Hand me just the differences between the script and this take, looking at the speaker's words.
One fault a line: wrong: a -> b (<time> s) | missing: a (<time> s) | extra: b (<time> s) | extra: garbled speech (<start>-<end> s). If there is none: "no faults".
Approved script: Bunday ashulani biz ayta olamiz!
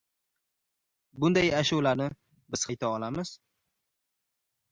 no faults